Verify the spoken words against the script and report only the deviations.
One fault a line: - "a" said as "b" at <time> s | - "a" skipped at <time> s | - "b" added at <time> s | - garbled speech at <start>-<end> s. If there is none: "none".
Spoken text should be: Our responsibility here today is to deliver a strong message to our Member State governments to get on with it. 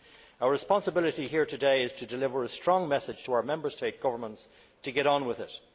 none